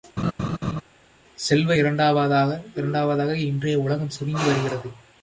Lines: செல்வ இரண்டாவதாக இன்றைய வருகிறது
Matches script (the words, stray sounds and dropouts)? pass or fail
fail